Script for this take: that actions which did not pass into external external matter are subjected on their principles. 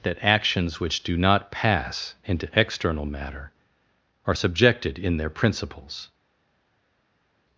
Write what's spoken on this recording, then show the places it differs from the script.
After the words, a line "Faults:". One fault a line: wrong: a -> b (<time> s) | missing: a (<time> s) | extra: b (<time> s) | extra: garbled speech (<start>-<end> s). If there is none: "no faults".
that actions which do not pass into external matter are subjected in their principles.
Faults:
wrong: did -> do (1.0 s)
missing: external (3.0 s)
wrong: on -> in (5.0 s)